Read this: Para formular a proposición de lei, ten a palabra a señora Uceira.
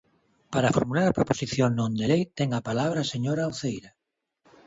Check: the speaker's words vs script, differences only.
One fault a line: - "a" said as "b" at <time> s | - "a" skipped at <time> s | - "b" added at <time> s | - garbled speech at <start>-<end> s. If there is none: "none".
- "non" added at 1.8 s